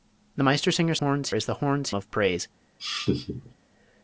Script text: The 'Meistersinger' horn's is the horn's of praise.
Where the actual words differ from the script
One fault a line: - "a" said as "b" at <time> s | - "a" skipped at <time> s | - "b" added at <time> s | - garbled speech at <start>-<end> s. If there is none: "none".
none